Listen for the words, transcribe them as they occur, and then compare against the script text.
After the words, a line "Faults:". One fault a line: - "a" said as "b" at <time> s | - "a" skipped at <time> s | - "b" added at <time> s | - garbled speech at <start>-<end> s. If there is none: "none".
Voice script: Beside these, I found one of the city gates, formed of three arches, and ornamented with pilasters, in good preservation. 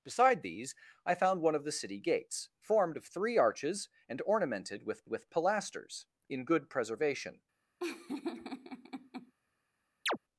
Beside these, I found one of the city gates, formed of three arches, and ornamented with with pilasters, in good preservation.
Faults:
- "with" added at 5.1 s